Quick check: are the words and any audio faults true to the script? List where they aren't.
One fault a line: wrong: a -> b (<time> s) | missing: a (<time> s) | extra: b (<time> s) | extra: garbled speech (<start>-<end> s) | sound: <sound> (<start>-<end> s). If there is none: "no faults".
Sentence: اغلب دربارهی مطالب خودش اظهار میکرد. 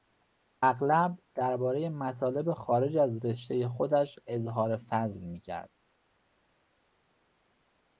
extra: خارج از رشتهی (2.5 s)
extra: فضل (4.8 s)